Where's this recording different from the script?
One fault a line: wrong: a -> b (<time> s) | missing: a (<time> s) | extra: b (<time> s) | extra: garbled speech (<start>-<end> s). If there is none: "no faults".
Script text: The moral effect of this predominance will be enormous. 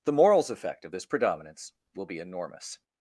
wrong: moral -> morals (0.1 s)